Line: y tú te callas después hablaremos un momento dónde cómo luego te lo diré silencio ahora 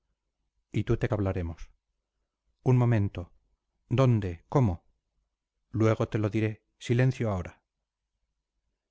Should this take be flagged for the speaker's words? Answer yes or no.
yes